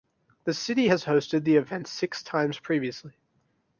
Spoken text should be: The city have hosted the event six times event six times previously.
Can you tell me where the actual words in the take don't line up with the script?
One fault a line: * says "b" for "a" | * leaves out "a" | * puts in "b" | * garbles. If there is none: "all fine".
* says "has" for "have"
* leaves out "event six times"